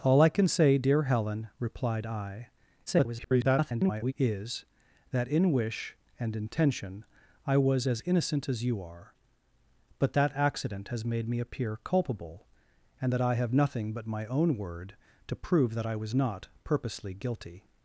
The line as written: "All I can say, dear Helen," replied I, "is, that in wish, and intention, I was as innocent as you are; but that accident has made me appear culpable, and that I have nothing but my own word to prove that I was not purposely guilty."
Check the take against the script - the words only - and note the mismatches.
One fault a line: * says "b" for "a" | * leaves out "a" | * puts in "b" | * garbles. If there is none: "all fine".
* garbles